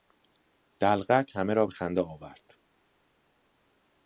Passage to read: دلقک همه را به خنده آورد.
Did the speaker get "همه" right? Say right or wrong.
right